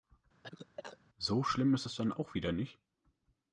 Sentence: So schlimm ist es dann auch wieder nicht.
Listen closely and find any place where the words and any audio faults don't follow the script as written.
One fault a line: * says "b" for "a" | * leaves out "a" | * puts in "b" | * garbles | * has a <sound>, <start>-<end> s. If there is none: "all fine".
* has a cough, 0.4-1.0 s